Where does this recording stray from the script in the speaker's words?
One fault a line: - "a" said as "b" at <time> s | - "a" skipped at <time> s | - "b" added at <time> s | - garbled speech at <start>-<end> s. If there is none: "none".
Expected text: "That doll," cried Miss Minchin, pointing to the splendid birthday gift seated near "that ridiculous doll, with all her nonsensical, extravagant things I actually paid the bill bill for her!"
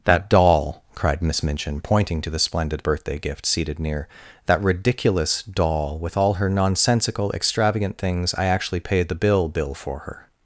none